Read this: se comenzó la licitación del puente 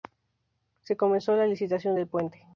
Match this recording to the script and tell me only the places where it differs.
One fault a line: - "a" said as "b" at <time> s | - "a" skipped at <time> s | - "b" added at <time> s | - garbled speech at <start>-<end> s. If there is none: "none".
none